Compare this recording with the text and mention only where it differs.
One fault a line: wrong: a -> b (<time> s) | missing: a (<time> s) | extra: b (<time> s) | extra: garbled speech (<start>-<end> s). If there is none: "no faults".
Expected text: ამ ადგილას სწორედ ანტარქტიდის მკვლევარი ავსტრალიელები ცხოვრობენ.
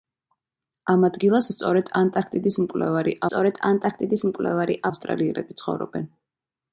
extra: სწორედ ანტარქტიდის მკვლევარი (3.3 s)